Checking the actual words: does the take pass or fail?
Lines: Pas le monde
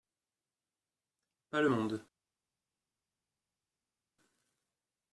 pass